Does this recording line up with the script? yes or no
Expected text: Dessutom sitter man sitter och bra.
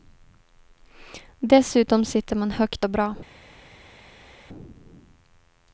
no